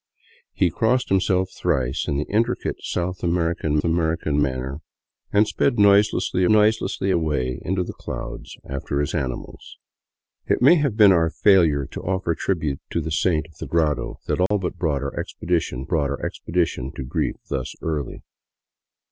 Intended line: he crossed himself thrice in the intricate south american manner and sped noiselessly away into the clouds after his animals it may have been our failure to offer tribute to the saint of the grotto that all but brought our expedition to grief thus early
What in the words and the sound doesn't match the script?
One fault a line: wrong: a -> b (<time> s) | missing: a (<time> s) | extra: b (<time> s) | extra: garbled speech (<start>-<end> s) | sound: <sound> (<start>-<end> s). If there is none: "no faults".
extra: american (3.8 s)
extra: noiselessly (6.5 s)
sound: dropout (14.5-14.5 s)
extra: brought our expedition (15.9 s)